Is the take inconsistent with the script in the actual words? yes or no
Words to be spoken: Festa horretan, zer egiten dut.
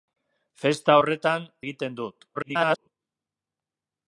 yes